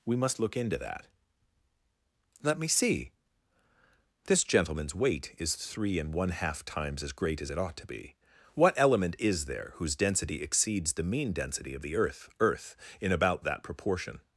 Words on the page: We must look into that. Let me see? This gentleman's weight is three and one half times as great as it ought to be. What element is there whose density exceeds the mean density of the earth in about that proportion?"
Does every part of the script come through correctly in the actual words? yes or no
no